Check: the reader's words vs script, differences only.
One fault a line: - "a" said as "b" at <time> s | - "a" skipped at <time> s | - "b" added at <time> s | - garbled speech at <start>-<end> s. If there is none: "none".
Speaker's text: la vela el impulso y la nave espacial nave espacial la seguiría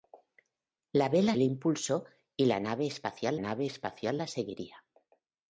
none